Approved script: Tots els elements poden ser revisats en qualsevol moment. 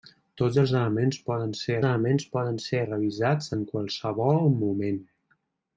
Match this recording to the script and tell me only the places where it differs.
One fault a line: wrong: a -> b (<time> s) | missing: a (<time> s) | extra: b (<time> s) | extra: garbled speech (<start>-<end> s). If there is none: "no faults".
extra: elements poden ser (1.9 s)